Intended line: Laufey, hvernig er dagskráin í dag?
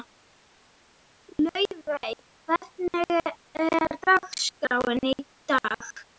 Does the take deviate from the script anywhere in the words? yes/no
no